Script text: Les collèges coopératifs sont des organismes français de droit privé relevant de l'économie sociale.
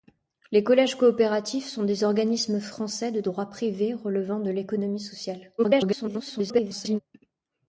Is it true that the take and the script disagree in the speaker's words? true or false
true